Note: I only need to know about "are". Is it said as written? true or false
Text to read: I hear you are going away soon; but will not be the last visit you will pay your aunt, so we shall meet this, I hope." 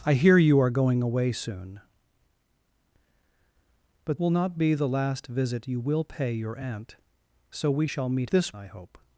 true